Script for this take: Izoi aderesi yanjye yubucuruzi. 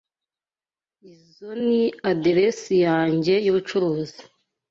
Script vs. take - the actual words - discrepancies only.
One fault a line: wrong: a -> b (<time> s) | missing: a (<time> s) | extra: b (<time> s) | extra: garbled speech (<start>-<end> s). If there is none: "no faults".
extra: ni (1.7 s)